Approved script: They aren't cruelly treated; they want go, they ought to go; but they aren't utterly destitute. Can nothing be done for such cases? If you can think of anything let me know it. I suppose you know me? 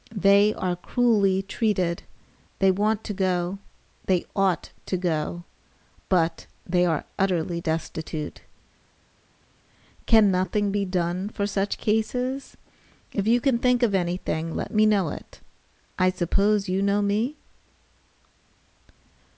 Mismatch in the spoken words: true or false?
true